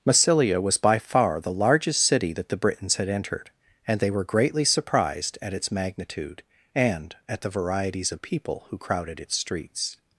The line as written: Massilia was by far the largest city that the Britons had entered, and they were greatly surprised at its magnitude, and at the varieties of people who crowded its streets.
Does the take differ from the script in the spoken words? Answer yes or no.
no